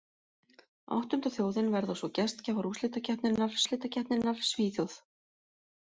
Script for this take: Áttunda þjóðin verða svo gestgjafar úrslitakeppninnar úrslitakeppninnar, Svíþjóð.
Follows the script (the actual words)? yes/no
yes